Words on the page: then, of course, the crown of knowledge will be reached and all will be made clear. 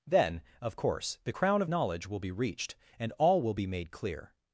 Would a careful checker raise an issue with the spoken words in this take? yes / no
no